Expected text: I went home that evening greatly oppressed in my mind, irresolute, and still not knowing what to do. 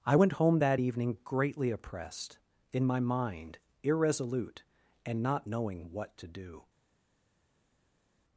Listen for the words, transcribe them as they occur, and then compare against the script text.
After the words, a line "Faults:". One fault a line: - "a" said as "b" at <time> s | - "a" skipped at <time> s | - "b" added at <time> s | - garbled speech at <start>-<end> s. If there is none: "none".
I went home that evening greatly oppressed in my mind, irresolute, and not knowing what to do.
Faults:
- "still" skipped at 5.2 s